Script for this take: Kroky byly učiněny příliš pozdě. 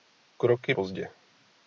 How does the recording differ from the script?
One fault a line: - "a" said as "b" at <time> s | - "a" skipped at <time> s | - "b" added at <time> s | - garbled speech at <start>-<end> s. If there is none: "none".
- "byly učiněny příliš" skipped at 0.7 s